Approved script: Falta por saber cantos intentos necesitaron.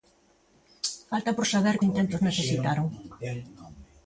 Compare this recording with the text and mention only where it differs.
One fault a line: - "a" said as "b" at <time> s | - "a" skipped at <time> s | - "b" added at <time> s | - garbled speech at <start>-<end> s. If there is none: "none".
- "cantos" skipped at 1.8 s